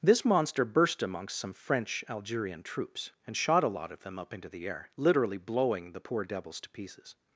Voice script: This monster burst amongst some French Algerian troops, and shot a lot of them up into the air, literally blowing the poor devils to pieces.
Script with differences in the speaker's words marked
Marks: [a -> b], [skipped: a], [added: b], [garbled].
This monster burst amongst some French Algerian troops, and shot a lot of them up into the air, literally blowing the poor devils to pieces.